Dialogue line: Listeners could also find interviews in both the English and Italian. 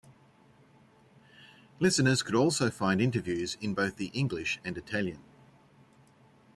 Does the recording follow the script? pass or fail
pass